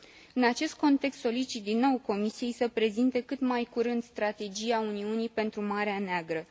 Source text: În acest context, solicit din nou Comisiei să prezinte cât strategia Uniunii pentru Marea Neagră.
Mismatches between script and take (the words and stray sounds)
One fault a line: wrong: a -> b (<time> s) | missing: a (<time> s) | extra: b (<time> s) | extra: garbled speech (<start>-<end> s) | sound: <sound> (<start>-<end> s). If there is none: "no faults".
extra: mai curând (3.4 s)